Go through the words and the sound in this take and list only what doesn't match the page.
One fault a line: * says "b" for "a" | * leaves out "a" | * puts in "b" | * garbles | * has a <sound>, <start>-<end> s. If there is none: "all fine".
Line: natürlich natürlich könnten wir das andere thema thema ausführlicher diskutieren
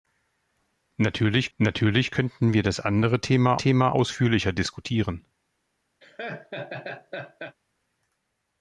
* has a laugh, 6.0-7.6 s